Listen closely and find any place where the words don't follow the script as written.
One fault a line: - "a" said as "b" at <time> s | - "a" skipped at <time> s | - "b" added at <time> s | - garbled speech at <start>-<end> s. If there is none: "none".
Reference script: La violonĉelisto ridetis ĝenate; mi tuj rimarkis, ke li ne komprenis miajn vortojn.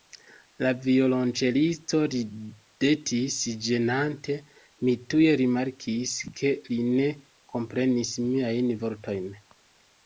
none